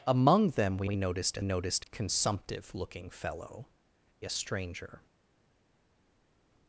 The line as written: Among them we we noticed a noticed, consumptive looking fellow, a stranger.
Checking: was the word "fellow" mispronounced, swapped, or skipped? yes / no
no